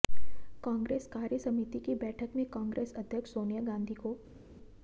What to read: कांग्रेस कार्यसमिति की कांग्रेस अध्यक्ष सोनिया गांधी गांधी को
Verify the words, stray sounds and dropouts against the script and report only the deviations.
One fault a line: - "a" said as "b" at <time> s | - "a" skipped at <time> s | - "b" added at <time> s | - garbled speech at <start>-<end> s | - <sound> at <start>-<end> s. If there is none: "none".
- "बैठक में" added at 2.0 s
- "गांधी" skipped at 3.9 s